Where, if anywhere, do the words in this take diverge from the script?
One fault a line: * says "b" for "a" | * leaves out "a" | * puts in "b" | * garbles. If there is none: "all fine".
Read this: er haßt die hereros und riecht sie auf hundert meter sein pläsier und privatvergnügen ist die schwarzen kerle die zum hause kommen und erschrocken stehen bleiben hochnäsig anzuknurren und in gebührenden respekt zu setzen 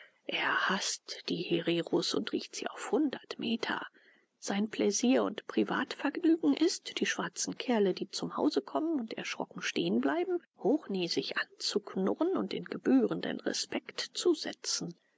all fine